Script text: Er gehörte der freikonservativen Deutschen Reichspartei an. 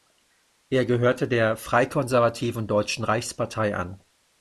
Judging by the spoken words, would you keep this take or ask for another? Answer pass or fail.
pass